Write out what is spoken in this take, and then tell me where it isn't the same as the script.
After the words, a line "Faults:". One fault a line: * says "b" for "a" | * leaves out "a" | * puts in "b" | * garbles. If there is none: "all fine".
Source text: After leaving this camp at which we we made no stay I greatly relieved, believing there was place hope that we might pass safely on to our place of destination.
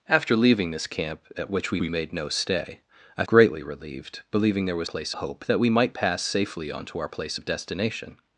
After leaving this camp at which we we made no stay I greatly relieved, believing there was place hope that we might pass safely on to our place of destination.
Faults:
all fine